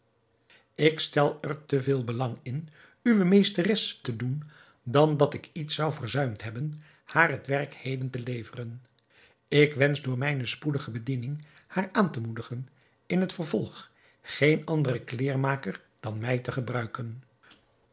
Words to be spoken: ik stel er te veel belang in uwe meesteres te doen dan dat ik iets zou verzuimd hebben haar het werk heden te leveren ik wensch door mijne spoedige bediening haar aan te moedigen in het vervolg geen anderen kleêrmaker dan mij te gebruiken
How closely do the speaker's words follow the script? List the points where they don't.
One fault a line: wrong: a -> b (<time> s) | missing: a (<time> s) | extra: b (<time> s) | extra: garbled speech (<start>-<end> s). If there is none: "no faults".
no faults